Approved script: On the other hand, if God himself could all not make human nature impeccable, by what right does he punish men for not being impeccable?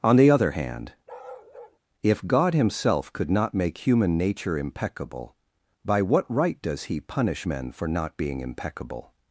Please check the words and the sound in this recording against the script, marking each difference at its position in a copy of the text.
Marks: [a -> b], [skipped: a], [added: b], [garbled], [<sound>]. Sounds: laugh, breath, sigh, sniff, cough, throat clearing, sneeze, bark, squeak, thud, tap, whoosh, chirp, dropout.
On the other hand, [bark] if God himself could [skipped: all] not make human nature impeccable, by what right does he punish men for not being impeccable?